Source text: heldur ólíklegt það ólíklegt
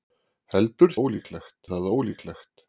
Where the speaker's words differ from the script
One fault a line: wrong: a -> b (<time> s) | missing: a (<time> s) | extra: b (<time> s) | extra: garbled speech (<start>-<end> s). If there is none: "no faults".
no faults